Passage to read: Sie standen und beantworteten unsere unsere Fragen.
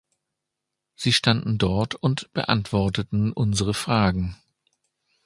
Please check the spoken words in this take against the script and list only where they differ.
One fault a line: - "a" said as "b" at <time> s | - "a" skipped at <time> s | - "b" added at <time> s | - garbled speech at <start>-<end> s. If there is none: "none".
- "dort" added at 1.6 s
- "unsere" skipped at 3.7 s